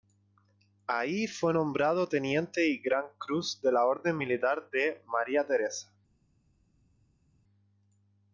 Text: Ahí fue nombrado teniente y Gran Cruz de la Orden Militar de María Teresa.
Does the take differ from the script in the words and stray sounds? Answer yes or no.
no